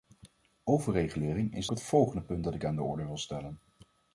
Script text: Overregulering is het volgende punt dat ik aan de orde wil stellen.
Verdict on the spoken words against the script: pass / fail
pass